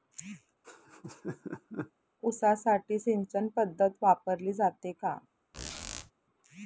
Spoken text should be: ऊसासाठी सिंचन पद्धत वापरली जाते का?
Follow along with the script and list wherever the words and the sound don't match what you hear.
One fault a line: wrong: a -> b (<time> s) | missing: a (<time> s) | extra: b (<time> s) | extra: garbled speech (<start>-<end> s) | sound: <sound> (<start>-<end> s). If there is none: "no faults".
sound: laugh (0.6-1.9 s)
sound: squeak (5.5-6.1 s)